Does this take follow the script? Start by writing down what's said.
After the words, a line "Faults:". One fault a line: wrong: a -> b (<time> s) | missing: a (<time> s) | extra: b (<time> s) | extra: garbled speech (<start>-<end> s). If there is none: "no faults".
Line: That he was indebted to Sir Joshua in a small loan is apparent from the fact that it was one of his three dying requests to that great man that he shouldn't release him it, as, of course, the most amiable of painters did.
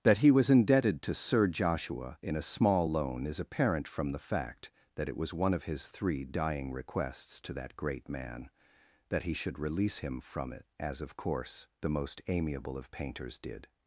That he was indebted to Sir Joshua in a small loan is apparent from the fact that it was one of his three dying requests to that great man that he should release him from it, as, of course, the most amiable of painters did.
Faults:
wrong: shouldn't -> should (9.3 s)
extra: from (10.2 s)